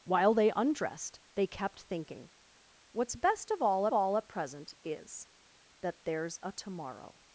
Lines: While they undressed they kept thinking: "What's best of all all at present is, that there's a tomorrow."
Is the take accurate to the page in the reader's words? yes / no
yes